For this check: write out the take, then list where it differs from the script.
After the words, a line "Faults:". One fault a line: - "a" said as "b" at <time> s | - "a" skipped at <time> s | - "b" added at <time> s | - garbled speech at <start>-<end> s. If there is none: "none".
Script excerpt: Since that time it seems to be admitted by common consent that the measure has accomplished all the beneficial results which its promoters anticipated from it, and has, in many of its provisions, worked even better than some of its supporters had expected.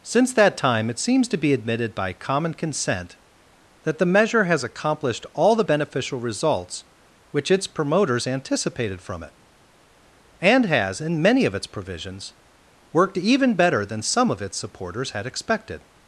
Since that time it seems to be admitted by common consent that the measure has accomplished all the beneficial results which its promoters anticipated from it, and has, in many of its provisions, worked even better than some of its supporters had expected.
Faults:
none